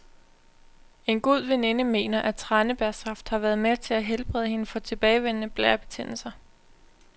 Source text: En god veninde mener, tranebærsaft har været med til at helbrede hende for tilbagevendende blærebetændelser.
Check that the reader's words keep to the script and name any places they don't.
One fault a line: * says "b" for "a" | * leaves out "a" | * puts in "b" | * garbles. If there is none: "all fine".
* puts in "at"